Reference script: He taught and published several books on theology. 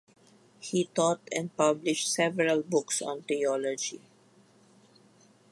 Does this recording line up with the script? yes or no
yes